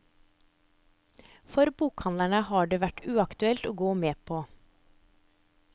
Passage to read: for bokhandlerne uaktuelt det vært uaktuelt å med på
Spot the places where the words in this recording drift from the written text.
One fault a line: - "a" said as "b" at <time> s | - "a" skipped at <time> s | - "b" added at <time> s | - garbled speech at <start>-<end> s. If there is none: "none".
- "uaktuelt" said as "har" at 2.5 s
- "gå" added at 3.8 s